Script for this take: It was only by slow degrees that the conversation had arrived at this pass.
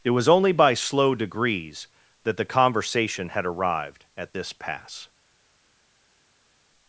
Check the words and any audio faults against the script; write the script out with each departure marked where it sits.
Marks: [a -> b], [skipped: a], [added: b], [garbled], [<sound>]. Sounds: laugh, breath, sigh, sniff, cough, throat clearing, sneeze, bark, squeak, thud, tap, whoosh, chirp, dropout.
It was only by slow degrees that the conversation had arrived at this pass.